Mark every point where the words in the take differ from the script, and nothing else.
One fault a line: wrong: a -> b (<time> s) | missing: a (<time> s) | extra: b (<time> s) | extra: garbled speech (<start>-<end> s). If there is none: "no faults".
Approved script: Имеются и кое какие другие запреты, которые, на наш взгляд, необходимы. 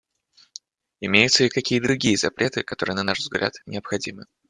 missing: кое (1.5 s)